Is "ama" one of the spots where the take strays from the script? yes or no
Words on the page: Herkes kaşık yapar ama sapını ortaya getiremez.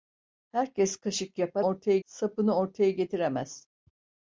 yes